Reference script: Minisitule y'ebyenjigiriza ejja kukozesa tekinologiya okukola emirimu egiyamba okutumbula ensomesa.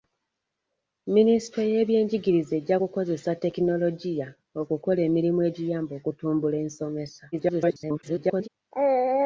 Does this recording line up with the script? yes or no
no